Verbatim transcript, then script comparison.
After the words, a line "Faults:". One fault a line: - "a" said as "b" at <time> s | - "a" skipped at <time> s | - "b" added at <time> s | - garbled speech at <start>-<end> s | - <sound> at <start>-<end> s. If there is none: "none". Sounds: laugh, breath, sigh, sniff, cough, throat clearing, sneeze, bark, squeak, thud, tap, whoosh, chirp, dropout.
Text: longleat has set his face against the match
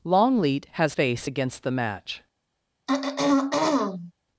longleat has face against the match
Faults:
- "set his" skipped at 0.9 s
- throat clearing at 2.9-4.1 s